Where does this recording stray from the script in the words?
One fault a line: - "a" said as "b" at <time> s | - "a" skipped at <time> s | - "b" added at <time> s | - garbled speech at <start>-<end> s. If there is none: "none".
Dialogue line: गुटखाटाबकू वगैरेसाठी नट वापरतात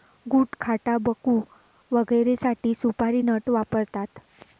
- "सुपारी" added at 2.8 s